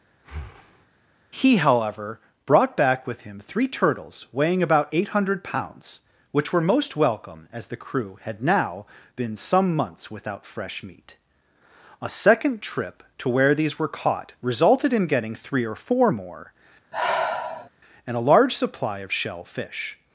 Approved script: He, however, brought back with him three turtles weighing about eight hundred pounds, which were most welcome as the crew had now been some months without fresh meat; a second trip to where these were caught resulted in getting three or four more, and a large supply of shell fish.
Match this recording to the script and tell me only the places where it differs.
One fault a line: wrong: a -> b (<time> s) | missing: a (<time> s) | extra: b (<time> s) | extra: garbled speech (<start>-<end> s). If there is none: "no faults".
no faults